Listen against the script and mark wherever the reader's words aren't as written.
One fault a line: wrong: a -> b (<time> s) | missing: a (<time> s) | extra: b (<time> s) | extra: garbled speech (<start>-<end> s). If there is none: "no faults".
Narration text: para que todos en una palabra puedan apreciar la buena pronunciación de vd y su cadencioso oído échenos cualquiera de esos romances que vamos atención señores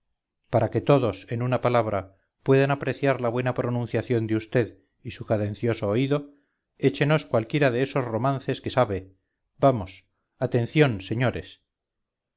extra: sabe (8.7 s)